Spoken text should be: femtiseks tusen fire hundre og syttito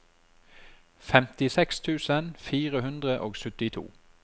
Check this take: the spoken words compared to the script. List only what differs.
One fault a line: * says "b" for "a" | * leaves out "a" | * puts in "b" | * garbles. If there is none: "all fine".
all fine